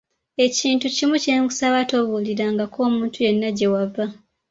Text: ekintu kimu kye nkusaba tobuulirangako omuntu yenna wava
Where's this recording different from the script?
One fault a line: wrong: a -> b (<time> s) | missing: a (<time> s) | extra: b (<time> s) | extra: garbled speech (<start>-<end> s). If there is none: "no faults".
extra: gye (3.6 s)